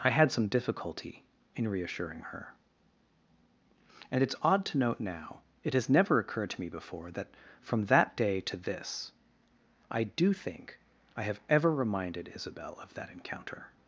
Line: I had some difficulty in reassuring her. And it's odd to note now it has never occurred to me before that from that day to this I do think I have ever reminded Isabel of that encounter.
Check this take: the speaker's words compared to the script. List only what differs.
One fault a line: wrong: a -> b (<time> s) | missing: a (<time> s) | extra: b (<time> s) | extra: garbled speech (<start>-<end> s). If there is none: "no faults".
no faults